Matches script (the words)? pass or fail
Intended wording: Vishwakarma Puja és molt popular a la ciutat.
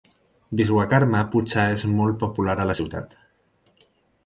pass